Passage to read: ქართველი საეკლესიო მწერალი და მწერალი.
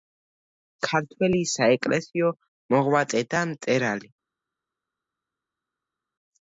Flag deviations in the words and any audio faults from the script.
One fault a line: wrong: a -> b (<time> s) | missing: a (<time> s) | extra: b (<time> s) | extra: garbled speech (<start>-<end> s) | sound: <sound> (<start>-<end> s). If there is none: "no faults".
wrong: მწერალი -> მოღვაწე (2.8 s)